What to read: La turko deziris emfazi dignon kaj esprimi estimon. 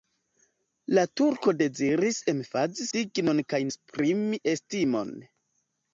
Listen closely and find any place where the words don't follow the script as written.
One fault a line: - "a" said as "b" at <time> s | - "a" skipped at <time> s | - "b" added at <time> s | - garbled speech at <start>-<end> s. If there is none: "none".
none